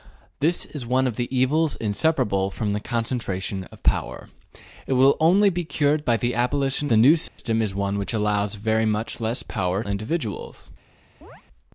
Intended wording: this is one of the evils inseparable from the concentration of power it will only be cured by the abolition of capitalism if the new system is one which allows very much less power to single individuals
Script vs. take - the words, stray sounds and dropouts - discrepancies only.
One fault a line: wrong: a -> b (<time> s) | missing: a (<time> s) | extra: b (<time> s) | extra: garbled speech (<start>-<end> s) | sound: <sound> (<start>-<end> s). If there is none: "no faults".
missing: of capitalism if (6.9 s)
sound: dropout (7.3-7.4 s)
missing: to single (9.8 s)
sound: chirp (11.2-11.4 s)